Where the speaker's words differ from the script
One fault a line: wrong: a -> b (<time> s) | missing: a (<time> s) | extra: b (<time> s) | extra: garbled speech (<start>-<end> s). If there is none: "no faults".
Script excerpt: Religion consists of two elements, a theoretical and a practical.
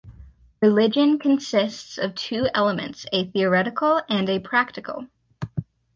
no faults